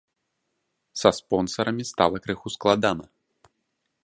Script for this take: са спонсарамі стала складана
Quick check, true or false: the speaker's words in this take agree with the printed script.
false